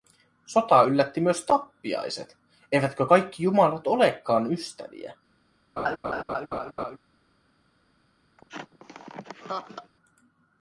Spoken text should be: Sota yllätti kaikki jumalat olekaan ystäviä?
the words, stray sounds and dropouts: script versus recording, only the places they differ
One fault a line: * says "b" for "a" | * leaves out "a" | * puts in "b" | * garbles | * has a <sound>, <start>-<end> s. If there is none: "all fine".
* puts in "myös tappiaiset eivätkö"
* has a laugh, 5.8-7.0 s
* has a laugh, 8.4-9.9 s